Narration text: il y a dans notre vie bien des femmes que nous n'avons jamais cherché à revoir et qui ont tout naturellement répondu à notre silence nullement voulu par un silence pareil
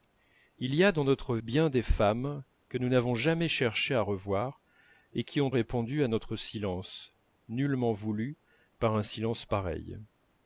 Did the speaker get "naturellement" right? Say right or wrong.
wrong